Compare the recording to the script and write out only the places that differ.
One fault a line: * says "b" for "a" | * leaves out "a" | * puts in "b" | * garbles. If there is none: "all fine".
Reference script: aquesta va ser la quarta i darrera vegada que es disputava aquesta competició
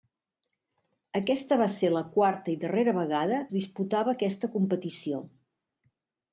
* leaves out "que"